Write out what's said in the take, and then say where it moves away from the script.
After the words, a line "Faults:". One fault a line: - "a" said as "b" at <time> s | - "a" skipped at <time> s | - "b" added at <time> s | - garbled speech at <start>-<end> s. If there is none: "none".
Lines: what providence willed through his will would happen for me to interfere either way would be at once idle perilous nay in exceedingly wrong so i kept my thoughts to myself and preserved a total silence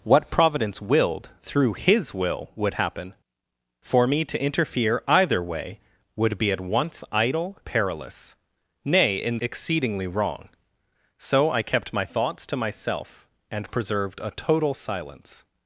what providence willed through his will would happen for me to interfere either way would be at once idle perilous nay in exceedingly wrong so i kept my thoughts to myself and preserved a total silence
Faults:
none